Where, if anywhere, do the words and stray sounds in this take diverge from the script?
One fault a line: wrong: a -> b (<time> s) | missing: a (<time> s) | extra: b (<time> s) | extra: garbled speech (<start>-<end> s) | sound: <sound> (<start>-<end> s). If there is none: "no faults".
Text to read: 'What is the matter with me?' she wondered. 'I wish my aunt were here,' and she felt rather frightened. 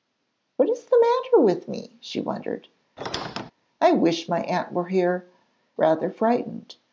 sound: squeak (3.0-3.5 s)
missing: and she felt (5.3 s)